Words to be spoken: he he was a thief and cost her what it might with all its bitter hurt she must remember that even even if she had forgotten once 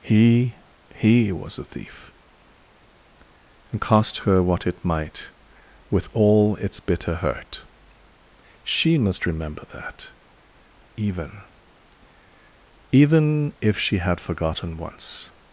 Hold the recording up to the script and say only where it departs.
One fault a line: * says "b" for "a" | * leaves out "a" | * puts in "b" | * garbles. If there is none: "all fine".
all fine